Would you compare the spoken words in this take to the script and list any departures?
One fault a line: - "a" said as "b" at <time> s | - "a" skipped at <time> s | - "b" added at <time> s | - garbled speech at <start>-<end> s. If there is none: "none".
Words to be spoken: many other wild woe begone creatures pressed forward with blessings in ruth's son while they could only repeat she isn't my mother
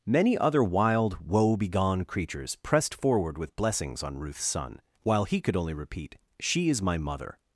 - "in" said as "on" at 4.0 s
- "they" said as "he" at 5.2 s
- "isn't" said as "is" at 6.7 s